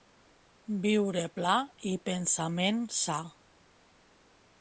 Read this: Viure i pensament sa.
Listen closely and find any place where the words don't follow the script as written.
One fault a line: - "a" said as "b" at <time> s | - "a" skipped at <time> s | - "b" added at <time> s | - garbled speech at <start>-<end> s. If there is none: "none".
- "pla" added at 1.4 s